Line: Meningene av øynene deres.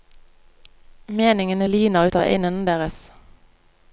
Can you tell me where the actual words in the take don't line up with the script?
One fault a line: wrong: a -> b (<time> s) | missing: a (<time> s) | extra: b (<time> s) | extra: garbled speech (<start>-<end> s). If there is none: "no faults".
extra: lyner ut (1.6 s)